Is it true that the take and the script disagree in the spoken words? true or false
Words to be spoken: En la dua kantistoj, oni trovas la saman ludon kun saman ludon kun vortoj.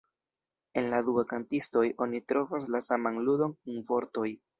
true